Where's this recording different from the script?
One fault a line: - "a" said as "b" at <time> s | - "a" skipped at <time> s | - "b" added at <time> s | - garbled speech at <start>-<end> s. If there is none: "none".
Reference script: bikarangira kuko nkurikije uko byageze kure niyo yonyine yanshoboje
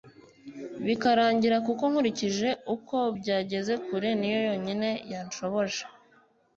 none